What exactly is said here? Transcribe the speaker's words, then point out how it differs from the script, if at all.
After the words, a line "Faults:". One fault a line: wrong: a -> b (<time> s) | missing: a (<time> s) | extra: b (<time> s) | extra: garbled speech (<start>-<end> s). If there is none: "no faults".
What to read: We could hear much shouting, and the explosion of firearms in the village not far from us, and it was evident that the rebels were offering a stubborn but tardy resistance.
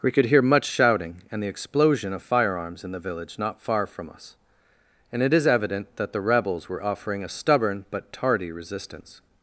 We could hear much shouting, and the explosion of firearms in the village not far from us, and it is evident that the rebels were offering a stubborn but tardy resistance.
Faults:
wrong: was -> is (5.3 s)